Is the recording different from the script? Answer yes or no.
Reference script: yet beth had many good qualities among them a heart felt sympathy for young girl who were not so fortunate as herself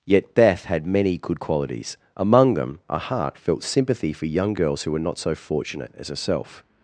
yes